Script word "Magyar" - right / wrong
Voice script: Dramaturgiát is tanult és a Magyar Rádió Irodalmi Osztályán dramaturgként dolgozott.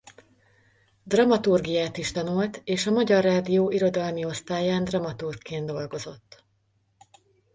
right